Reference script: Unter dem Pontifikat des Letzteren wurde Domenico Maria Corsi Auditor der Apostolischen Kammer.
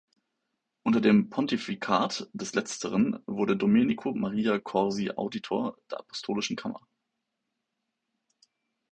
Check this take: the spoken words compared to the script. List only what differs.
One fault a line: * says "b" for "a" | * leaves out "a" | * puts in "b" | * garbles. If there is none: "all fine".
all fine